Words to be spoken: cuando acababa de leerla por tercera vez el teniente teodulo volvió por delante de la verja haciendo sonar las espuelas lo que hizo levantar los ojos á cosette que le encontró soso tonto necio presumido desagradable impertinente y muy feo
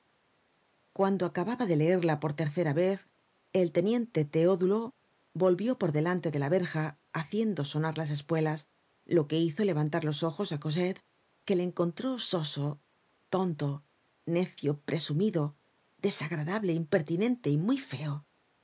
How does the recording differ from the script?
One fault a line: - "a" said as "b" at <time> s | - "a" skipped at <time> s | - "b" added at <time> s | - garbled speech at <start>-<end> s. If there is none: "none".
none